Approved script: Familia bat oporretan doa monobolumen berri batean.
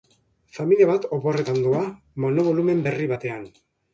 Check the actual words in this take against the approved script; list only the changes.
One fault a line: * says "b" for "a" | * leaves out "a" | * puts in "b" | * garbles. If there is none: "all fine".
all fine